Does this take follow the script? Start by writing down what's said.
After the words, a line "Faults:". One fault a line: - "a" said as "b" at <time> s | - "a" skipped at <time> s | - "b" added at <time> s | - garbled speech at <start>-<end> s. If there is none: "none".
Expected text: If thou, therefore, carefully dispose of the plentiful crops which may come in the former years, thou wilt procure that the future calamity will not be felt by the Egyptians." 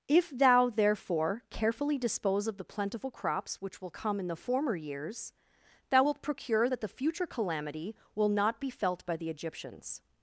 If thou, therefore, carefully dispose of the plentiful crops which will come in the former years, thou wilt procure that the future calamity will not be felt by the Egyptians."
Faults:
- "may" said as "will" at 3.8 s